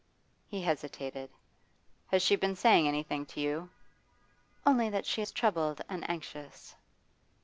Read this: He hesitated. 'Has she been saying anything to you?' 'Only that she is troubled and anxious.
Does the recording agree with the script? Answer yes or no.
yes